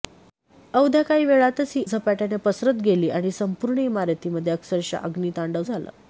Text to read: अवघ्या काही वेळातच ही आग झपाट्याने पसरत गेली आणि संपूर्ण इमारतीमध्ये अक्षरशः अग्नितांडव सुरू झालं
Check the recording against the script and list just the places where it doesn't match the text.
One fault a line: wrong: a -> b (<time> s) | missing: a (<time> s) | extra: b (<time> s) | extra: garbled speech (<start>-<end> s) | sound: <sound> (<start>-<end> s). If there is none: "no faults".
missing: आग (1.8 s)
missing: सुरू (5.6 s)